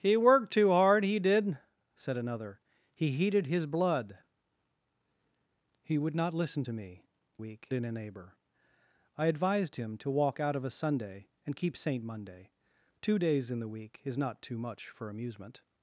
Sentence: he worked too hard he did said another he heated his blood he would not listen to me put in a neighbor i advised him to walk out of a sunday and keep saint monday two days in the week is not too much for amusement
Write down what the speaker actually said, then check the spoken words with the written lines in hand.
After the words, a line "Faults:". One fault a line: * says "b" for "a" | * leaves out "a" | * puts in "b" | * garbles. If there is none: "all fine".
he worked too hard he did said another he heated his blood he would not listen to me week in a neighbor i advised him to walk out of a sunday and keep saint monday two days in the week is not too much for amusement
Faults:
* says "week" for "put"